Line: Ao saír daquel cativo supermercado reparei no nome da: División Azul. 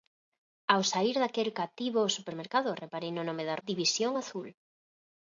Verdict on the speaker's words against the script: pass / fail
pass